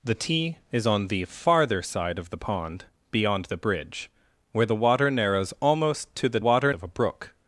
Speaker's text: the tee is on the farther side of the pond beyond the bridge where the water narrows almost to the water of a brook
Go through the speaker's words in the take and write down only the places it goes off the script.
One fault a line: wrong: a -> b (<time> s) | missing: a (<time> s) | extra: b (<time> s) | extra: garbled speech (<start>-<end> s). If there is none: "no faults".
no faults